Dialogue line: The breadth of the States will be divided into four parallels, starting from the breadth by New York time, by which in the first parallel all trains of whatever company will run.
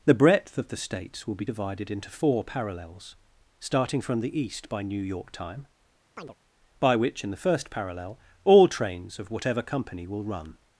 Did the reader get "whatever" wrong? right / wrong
right